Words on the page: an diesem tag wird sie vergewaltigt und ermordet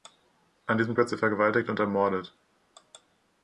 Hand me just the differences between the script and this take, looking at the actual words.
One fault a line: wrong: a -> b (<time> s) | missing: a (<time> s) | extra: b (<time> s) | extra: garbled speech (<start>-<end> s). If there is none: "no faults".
missing: tag (0.9 s)